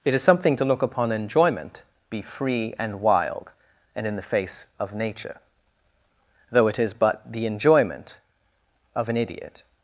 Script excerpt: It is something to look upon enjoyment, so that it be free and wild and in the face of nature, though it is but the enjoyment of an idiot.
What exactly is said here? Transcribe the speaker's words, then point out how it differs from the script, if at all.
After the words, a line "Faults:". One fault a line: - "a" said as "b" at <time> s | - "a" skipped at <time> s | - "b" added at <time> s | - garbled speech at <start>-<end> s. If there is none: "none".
It is something to look upon enjoyment, be free and wild and in the face of nature, though it is but the enjoyment of an idiot.
Faults:
- "so that it" skipped at 1.8 s